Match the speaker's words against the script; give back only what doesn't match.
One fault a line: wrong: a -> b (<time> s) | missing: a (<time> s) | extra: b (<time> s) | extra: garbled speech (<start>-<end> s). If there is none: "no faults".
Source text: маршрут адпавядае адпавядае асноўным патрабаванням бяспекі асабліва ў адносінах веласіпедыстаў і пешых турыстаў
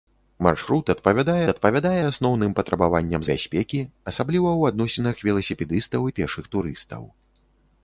no faults